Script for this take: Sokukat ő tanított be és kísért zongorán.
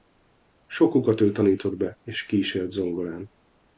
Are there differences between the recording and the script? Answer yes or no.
no